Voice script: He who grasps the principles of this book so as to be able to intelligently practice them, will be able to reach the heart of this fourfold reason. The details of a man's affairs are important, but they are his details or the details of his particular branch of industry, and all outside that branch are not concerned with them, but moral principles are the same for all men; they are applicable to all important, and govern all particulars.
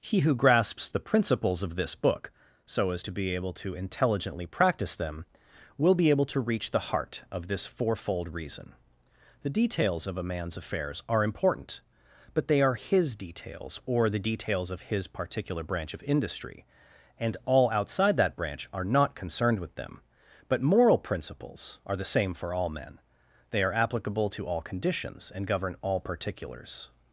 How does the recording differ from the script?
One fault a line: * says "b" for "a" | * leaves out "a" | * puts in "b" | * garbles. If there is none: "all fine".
* says "conditions" for "important"